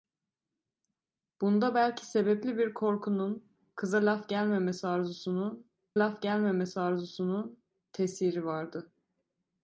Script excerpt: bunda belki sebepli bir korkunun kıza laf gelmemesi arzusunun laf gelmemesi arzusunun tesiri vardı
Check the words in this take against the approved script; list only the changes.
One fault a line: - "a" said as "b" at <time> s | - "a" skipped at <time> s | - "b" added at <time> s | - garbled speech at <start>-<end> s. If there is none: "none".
none